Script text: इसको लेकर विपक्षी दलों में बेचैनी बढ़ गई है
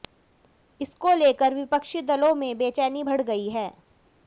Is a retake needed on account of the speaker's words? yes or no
no